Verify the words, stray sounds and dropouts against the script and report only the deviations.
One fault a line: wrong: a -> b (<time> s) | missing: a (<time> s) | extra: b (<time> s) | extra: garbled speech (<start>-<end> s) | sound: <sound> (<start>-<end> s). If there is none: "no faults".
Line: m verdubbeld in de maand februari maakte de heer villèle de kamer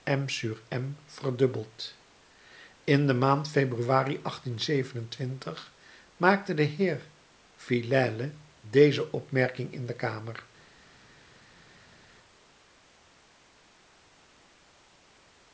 extra: deze opmerking in (8.6 s)